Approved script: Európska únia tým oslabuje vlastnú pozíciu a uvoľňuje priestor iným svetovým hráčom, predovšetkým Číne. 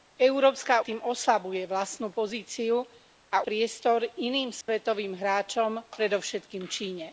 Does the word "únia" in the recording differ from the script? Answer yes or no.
yes